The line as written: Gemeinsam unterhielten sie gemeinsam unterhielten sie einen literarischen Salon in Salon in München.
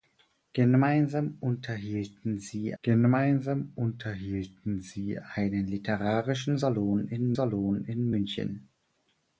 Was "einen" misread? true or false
false